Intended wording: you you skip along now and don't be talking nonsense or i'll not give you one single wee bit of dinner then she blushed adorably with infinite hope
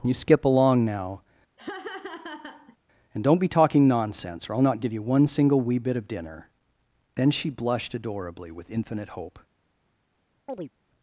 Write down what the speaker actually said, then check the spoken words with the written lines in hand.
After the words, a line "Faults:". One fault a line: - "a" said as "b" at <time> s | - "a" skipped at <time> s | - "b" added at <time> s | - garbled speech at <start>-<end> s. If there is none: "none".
you skip along now and don't be talking nonsense or i'll not give you one single wee bit of dinner then she blushed adorably with infinite hope
Faults:
- "you" skipped at 0.1 s